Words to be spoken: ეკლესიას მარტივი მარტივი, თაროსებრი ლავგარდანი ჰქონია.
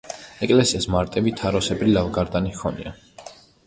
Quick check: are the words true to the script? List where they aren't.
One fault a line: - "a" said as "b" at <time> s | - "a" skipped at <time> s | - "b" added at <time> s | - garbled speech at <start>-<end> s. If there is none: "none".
- "მარტივი" skipped at 1.4 s